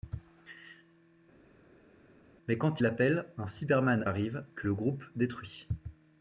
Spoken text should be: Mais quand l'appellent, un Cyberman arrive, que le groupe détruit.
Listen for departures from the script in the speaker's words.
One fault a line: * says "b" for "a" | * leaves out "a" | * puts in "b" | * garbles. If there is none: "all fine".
all fine